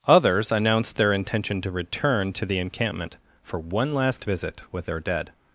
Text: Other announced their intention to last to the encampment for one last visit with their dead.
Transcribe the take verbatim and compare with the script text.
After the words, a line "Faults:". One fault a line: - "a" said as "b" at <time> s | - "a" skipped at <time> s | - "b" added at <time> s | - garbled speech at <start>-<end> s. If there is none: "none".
Others announced their intention to return to the encampment for one last visit with their dead.
Faults:
- "Other" said as "Others" at 0.1 s
- "last" said as "return" at 1.7 s